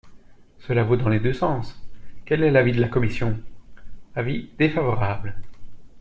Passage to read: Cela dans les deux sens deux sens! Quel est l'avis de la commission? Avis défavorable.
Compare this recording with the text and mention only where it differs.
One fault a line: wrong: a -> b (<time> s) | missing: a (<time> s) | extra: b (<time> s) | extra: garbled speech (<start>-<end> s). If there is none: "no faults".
extra: vaut (0.8 s)
missing: deux sens (1.7 s)